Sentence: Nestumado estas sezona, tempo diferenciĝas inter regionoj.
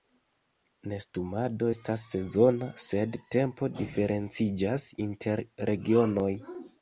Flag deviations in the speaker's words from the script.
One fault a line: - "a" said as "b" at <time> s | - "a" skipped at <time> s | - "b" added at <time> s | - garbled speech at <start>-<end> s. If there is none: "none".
- "sed" added at 2.8 s